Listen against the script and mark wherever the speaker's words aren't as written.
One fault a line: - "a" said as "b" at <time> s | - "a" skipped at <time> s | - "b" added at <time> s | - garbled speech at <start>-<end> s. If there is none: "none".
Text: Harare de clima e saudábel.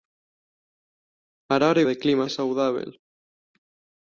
none